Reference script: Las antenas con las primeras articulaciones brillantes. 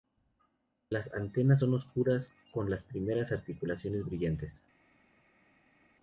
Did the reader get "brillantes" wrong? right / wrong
right